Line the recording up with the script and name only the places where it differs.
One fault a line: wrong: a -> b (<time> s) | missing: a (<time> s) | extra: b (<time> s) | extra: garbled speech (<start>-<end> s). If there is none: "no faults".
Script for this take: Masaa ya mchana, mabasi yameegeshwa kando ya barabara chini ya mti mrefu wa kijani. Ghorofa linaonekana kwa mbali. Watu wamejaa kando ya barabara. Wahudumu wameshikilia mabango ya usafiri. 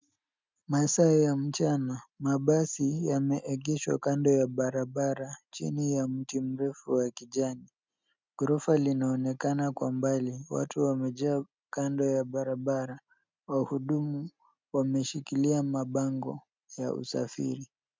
no faults